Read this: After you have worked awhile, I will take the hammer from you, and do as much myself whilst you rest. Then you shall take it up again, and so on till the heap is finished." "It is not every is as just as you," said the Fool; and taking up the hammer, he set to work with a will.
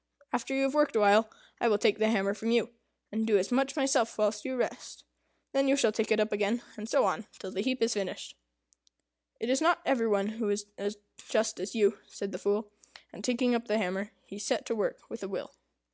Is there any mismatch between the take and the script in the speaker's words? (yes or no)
yes